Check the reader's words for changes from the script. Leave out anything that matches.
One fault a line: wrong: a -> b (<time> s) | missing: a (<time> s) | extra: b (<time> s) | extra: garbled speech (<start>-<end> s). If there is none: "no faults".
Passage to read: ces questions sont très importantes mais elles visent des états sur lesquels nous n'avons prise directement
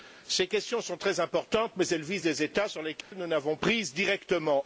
no faults